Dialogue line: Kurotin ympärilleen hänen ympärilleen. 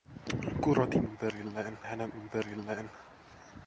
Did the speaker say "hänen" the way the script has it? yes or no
yes